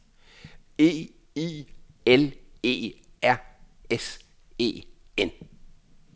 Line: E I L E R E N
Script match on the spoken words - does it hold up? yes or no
no